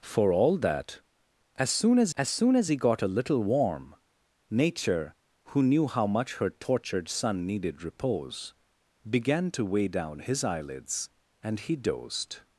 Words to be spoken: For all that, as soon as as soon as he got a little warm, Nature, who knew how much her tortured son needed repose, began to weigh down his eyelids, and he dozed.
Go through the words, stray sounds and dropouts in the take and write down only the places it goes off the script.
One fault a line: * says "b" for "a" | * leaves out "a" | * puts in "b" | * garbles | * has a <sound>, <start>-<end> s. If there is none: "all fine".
all fine